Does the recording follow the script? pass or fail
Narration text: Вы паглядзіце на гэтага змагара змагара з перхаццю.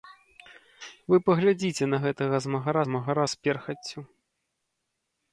pass